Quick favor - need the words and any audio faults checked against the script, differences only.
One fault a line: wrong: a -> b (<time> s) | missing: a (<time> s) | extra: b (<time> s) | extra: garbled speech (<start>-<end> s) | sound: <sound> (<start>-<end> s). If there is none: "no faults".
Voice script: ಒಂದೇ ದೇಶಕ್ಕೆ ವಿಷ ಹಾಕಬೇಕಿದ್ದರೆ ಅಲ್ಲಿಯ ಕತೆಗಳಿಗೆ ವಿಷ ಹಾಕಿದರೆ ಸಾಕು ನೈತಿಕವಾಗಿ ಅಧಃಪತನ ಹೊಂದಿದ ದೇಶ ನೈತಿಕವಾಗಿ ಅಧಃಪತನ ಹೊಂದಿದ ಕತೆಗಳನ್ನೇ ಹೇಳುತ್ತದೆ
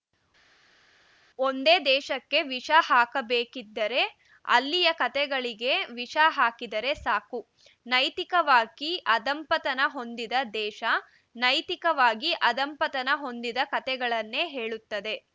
no faults